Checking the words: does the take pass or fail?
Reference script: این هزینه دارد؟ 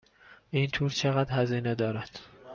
fail